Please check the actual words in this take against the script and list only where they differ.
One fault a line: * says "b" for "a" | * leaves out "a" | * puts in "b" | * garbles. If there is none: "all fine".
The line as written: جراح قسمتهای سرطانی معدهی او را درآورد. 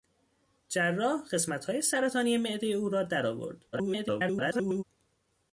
* garbles